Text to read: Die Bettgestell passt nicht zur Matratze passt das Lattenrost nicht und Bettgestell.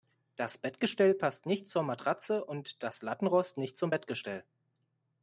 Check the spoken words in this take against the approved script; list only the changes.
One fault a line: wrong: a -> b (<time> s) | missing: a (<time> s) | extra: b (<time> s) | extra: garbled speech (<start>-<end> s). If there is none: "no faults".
wrong: Die -> Das (0.3 s)
wrong: passt -> und (2.4 s)
wrong: und -> zum (3.8 s)